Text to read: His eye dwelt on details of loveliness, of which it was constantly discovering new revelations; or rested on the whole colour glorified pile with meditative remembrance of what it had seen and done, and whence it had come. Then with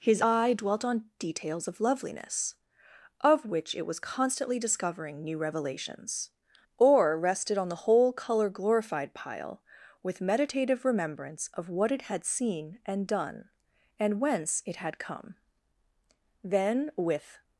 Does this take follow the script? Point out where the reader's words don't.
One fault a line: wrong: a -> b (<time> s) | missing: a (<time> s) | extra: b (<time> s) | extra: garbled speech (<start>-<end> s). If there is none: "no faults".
no faults